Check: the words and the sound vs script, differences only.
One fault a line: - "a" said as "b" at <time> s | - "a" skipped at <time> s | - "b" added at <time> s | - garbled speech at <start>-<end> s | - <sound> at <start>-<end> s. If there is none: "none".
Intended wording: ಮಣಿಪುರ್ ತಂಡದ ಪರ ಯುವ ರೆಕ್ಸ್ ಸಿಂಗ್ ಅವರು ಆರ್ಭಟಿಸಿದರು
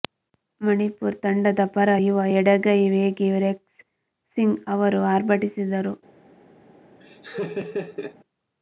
- "ಎಡಗೈ ವೇಗಿ" added at 2.4 s
- laugh at 7.0-8.2 s